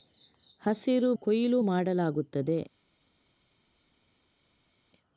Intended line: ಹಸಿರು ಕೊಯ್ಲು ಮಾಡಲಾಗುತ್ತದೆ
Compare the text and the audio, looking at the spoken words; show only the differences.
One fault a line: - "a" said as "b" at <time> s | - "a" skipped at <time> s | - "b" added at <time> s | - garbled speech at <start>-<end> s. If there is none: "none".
none